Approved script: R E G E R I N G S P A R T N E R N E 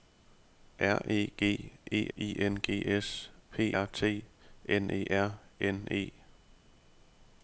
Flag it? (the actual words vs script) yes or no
yes